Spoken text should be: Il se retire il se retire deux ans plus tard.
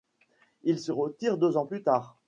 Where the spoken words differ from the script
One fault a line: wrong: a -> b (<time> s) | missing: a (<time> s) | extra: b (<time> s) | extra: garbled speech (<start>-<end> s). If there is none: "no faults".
missing: il se retire (1.4 s)